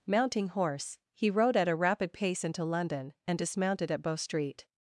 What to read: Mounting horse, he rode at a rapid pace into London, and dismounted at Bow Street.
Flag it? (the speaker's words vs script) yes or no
no